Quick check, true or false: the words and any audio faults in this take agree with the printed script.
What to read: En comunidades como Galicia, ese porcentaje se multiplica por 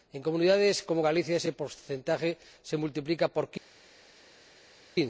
true